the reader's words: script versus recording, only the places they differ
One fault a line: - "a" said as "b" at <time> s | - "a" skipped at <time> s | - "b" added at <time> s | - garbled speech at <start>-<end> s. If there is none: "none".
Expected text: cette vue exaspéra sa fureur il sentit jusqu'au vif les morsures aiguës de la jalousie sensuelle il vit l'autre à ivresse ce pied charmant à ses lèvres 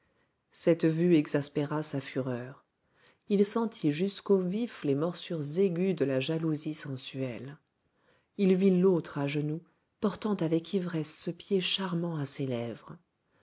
- "genoux portant avec" added at 9.3 s